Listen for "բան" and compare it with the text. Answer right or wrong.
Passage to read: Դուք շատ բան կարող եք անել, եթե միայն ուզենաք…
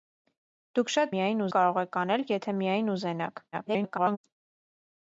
wrong